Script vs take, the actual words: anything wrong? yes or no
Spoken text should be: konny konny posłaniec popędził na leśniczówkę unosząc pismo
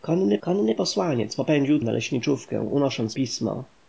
no